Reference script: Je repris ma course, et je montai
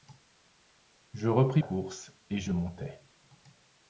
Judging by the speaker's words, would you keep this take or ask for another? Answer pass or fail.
fail